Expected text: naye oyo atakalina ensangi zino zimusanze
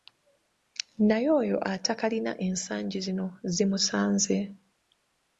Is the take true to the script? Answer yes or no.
yes